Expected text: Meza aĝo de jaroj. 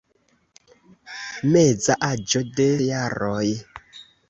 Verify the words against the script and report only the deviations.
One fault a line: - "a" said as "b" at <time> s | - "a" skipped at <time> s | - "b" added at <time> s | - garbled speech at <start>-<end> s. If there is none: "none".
none